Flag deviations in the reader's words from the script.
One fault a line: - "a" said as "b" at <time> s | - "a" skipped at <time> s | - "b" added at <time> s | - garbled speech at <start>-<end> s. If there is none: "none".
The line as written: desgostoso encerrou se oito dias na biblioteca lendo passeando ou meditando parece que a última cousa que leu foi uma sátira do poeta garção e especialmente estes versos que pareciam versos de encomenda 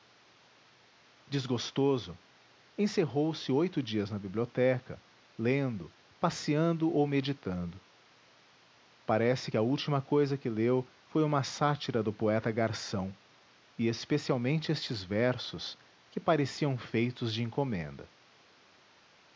- "versos" said as "feitos" at 16.8 s